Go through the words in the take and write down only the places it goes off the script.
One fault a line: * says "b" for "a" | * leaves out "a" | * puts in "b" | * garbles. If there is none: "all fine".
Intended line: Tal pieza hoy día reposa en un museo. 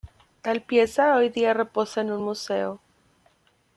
all fine